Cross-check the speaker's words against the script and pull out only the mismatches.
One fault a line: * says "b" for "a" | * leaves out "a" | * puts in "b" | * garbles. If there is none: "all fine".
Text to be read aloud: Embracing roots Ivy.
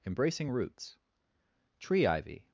* puts in "Tree"